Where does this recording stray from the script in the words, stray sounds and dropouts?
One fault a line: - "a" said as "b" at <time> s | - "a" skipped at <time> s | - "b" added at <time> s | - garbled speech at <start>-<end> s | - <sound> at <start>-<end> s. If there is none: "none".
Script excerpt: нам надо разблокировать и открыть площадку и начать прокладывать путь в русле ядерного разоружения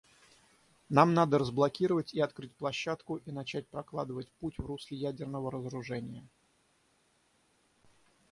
none